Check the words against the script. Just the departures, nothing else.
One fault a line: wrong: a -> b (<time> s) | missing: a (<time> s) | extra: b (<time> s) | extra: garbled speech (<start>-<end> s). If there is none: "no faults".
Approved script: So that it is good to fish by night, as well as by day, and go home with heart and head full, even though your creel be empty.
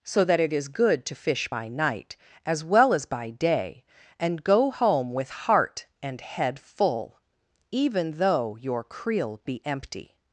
no faults